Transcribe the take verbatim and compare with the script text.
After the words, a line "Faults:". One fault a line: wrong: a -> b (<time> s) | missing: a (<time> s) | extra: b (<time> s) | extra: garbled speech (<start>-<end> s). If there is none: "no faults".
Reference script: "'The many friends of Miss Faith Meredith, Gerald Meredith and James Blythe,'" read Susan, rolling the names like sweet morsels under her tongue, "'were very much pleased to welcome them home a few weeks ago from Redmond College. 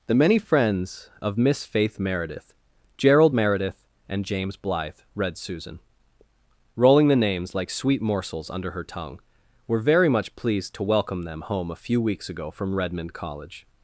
"'The many friends of Miss Faith Meredith, Gerald Meredith and James Blythe,'" read Susan, rolling the names like sweet morsels under her tongue, "'were very much pleased to welcome them home a few weeks ago from Redmond College.
Faults:
no faults